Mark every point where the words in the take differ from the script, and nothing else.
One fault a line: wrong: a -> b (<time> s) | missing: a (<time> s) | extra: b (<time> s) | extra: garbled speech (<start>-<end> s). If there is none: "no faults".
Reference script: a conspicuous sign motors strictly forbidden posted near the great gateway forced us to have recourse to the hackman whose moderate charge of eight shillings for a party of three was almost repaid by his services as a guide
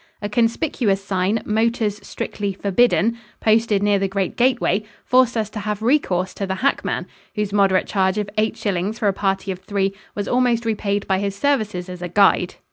no faults